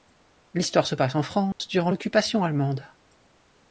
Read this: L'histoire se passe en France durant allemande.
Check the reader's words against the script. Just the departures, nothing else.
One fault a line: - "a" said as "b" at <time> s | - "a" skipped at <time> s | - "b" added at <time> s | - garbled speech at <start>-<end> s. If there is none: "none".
- "l'Occupation" added at 1.9 s